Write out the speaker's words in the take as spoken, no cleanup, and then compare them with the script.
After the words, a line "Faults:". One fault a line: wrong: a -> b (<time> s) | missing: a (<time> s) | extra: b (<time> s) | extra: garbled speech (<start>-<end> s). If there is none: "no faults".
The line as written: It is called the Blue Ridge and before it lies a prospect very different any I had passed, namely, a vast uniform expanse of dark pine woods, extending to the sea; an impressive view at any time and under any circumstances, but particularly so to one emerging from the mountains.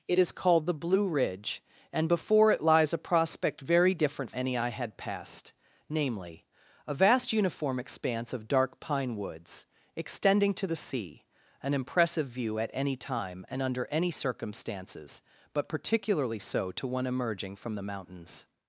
It is called the Blue Ridge and before it lies a prospect very different any I had passed, namely, a vast uniform expanse of dark pine woods, extending to the sea; an impressive view at any time and under any circumstances, but particularly so to one emerging from the mountains.
Faults:
no faults